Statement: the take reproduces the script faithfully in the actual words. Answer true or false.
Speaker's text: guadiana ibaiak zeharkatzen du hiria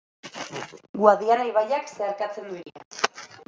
true